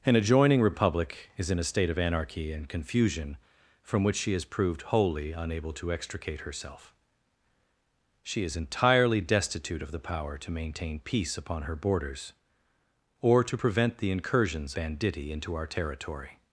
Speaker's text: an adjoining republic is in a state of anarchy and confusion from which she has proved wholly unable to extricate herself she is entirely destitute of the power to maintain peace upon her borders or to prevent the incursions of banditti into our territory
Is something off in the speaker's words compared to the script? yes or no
yes